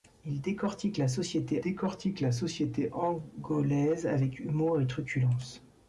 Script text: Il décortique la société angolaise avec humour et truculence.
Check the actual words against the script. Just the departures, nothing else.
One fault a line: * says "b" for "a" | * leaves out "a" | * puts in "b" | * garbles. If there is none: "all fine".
* puts in "décortique la société"